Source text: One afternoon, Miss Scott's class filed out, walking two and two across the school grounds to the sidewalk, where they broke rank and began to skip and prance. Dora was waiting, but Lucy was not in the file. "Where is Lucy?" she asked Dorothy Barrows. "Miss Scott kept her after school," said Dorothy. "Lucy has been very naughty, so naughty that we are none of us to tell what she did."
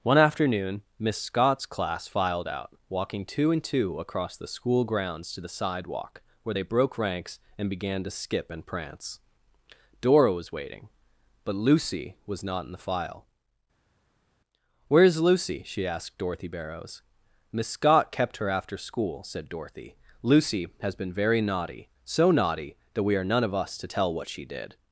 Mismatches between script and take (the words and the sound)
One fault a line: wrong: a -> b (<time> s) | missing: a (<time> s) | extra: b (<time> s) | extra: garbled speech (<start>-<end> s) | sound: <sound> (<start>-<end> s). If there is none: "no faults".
wrong: rank -> ranks (7.0 s)